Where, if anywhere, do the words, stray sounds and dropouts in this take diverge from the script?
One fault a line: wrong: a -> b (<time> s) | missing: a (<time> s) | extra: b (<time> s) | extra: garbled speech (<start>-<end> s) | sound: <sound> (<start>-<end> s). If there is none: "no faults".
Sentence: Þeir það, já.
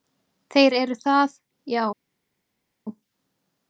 extra: eru (0.8 s)